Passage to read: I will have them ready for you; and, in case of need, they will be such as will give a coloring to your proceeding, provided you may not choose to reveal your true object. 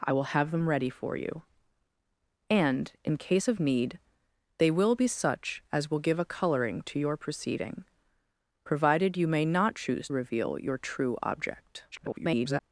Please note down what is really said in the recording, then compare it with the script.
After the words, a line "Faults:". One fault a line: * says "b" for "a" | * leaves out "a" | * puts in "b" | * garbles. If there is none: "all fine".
I will have them ready for you; and, in case of need, they will be such as will give a coloring to your proceeding, provided you may not choose reveal your true object. [garbled]
Faults:
* leaves out "to"
* garbles